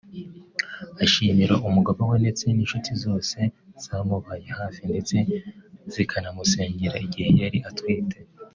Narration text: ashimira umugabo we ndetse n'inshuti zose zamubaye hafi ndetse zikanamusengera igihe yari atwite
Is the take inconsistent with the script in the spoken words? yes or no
no